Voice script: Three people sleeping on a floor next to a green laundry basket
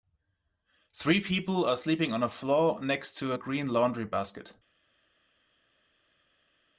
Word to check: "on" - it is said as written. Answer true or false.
true